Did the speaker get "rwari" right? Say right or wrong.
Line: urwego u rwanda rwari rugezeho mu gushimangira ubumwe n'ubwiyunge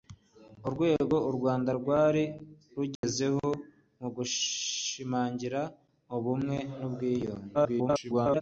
right